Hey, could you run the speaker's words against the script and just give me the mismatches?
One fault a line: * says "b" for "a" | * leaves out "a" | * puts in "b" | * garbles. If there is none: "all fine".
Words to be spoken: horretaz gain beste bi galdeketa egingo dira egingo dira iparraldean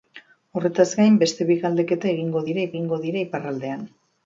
all fine